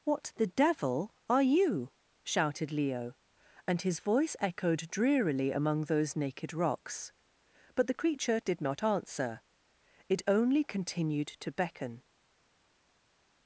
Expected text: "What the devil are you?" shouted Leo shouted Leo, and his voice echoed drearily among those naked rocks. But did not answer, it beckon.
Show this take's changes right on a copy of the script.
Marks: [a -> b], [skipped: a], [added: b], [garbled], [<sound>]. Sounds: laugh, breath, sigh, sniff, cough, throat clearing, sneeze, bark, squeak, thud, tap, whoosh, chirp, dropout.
"What the devil are you?" shouted Leo [skipped: shouted Leo,] and his voice echoed drearily among those naked rocks. But [added: the creature] did not answer, it [added: only continued to] beckon.